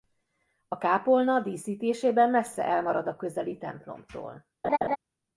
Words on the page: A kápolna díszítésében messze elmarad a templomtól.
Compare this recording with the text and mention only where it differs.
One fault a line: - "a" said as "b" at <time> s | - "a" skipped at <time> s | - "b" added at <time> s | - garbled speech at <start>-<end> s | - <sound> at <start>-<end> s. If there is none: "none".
- "közeli" added at 3.1 s
- laugh at 4.6-5.0 s